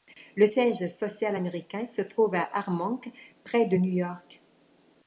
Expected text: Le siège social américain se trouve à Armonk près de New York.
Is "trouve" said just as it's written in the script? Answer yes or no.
yes